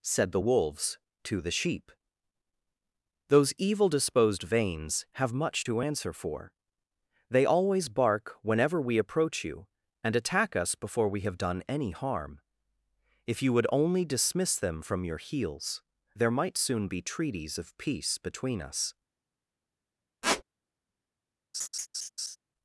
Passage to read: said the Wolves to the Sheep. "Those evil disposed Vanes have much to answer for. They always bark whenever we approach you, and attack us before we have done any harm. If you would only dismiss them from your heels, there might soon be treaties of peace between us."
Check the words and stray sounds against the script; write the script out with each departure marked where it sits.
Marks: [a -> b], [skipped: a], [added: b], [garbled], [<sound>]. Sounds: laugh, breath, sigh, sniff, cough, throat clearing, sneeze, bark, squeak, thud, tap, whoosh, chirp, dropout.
said the Wolves to the Sheep. "Those evil disposed Vanes have much to answer for. They always bark whenever we approach you, and attack us before we have done any harm. If you would only dismiss them from your heels, there might soon be treaties of peace between us." [squeak] [laugh]